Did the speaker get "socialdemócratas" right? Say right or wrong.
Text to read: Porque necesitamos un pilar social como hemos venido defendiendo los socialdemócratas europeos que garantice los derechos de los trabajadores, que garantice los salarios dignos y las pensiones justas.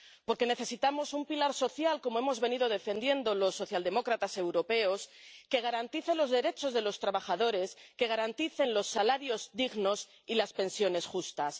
right